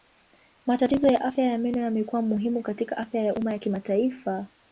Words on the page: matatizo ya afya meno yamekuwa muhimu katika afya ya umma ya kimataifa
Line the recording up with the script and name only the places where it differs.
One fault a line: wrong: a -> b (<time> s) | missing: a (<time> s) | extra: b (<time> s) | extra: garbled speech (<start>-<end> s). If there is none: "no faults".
extra: ya (1.4 s)